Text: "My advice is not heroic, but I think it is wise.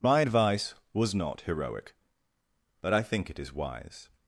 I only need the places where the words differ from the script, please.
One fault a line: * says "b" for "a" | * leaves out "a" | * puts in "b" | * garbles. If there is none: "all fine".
* says "was" for "is"